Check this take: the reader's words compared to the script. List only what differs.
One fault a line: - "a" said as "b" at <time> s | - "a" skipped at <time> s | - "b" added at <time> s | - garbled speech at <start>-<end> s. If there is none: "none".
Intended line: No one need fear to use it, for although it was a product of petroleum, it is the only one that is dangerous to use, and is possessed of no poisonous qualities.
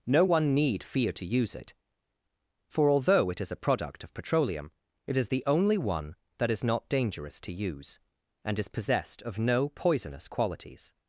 - "was" said as "is" at 3.4 s
- "not" added at 6.6 s